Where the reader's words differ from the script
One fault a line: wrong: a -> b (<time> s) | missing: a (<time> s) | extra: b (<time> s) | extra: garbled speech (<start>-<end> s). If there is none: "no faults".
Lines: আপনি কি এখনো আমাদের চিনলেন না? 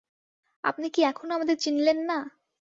no faults